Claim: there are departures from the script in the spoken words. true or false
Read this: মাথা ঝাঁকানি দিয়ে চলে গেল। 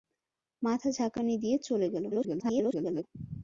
true